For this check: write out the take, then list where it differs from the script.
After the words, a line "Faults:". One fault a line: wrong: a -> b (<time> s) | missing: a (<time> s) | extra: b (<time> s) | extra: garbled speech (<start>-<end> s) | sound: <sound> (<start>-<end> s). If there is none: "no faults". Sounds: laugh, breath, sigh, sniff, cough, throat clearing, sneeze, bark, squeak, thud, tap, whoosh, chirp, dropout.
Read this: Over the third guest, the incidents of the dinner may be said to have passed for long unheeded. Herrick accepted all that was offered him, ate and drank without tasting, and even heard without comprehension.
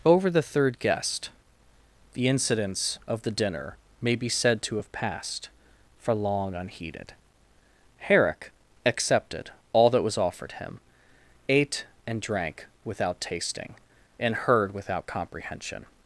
Over the third guest, the incidents of the dinner may be said to have passed for long unheeded. Herrick accepted all that was offered him, ate and drank without tasting, and heard without comprehension.
Faults:
missing: even (14.3 s)